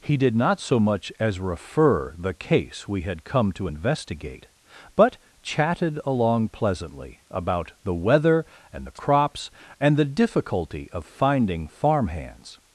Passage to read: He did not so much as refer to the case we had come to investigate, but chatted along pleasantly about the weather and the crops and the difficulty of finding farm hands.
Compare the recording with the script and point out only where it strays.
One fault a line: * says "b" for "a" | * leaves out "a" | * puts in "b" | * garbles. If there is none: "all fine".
* leaves out "to"